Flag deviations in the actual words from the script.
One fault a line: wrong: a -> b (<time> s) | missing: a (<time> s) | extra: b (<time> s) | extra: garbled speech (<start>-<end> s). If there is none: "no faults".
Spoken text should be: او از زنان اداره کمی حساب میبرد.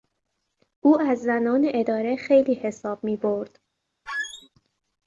wrong: کمی -> خیلی (2.1 s)